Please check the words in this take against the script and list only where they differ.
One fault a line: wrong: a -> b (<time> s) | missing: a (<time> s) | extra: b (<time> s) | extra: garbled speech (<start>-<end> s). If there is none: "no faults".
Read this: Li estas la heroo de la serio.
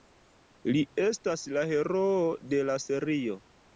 no faults